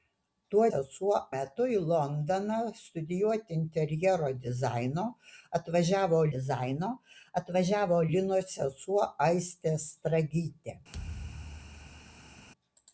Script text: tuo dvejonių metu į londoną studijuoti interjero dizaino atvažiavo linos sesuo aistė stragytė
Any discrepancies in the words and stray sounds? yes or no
yes